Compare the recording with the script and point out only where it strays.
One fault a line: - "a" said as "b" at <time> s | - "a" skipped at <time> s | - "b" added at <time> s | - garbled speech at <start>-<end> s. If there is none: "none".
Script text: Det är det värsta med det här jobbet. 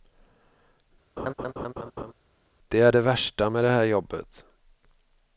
none